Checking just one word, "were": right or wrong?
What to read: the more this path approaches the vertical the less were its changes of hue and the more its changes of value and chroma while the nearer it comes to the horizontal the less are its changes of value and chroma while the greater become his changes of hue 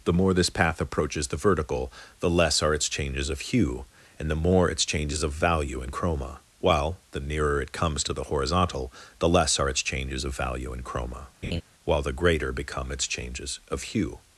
wrong